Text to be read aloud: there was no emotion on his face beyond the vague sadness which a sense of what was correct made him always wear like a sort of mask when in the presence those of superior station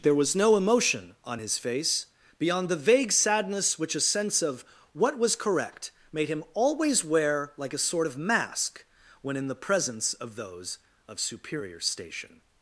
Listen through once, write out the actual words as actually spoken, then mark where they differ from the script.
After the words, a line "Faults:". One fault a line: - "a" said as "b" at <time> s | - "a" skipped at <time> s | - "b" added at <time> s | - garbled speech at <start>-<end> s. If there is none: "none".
there was no emotion on his face beyond the vague sadness which a sense of what was correct made him always wear like a sort of mask when in the presence of those of superior station
Faults:
- "of" added at 10.1 s